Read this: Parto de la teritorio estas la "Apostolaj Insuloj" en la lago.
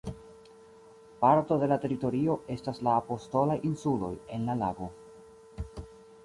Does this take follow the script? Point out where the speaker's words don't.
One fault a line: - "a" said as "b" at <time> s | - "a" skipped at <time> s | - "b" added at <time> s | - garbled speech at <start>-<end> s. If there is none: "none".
none